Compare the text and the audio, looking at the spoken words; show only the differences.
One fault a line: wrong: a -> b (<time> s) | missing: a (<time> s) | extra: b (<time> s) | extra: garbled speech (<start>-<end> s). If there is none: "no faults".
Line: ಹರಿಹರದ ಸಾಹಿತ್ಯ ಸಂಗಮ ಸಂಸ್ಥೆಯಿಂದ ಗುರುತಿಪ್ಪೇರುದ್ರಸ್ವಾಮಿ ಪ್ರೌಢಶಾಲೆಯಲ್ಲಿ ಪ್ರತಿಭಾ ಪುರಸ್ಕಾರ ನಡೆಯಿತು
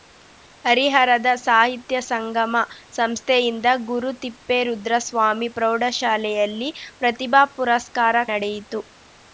no faults